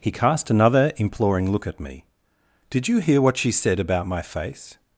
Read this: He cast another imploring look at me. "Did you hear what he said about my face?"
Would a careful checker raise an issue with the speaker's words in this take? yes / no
yes